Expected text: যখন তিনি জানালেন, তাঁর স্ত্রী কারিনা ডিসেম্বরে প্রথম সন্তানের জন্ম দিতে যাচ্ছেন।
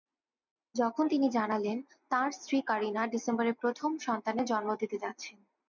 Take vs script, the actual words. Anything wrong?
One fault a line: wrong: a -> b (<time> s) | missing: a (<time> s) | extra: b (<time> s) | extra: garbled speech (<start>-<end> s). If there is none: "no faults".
no faults